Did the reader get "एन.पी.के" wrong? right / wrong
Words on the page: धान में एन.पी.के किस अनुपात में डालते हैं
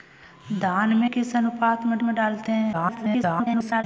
wrong